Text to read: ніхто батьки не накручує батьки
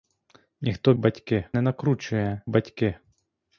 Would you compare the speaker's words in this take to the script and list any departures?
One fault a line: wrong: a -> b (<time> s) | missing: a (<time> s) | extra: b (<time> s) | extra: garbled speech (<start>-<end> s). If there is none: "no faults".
no faults